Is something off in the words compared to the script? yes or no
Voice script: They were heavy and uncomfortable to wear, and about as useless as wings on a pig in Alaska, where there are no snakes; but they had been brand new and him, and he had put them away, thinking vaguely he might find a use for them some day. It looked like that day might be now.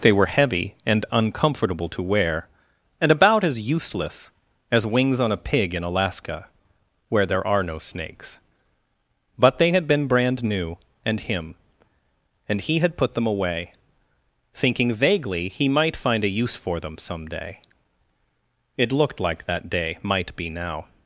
no